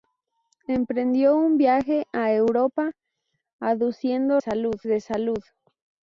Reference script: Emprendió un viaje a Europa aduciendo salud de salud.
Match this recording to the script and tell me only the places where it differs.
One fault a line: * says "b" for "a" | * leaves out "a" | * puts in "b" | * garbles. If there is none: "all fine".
all fine